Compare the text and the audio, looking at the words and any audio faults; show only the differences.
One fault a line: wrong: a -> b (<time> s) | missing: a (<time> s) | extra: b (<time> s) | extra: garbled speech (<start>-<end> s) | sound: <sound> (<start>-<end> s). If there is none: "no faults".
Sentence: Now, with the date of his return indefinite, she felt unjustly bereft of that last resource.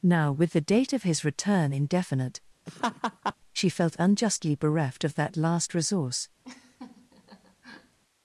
sound: laugh (2.7-3.3 s)
sound: laugh (6.4-8.0 s)